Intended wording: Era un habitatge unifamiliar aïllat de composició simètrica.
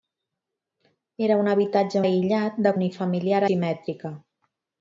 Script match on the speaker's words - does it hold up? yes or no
no